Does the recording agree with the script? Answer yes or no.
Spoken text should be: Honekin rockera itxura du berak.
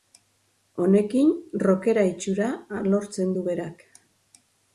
no